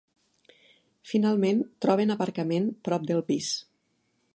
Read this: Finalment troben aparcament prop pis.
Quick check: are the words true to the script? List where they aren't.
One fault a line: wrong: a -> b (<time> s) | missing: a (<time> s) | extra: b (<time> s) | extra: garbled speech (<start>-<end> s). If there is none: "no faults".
extra: del (3.1 s)